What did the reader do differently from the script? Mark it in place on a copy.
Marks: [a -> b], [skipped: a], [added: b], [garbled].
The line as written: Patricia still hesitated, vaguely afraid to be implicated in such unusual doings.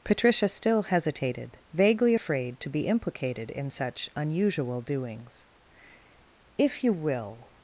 Patricia still hesitated, vaguely afraid to be implicated in such unusual doings. [added: If you will]